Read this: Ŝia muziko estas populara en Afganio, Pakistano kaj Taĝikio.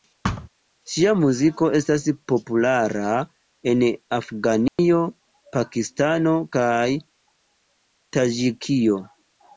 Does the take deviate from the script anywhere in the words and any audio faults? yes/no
yes